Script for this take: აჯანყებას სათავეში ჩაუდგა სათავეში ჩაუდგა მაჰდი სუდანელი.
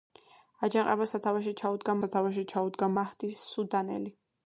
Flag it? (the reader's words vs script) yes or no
no